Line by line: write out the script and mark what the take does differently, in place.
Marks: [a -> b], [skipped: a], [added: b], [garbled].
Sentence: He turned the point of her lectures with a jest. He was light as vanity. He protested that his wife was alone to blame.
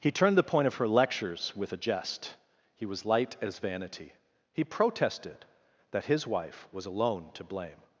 He turned the point of her lectures with a jest. He was light as vanity. He protested that his wife was alone to blame.